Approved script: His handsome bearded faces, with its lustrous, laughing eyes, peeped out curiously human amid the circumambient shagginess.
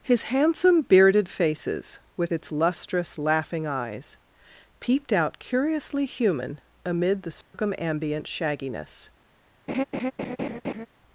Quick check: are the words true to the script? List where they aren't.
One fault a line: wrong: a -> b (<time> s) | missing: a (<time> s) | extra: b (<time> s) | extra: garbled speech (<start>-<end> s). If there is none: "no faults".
no faults